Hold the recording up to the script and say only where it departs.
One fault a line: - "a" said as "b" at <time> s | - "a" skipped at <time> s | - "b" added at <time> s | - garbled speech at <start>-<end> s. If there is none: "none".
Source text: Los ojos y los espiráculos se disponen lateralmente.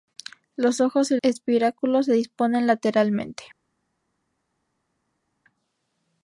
- "los" skipped at 1.2 s